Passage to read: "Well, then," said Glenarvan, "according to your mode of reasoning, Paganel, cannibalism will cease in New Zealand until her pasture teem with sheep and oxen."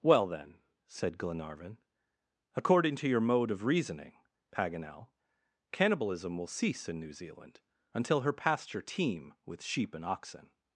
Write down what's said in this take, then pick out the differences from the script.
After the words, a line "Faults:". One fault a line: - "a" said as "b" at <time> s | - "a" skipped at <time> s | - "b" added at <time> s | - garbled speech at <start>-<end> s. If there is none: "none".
"Well, then," said Glenarvan, "according to your mode of reasoning, Paganel, cannibalism will cease in New Zealand until her pasture teem with sheep and oxen."
Faults:
none